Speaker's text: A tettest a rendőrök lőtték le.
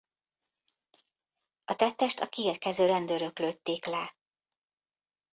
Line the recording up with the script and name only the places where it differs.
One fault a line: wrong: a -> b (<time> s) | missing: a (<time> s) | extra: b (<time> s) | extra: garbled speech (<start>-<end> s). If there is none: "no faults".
extra: kiérkező (2.3 s)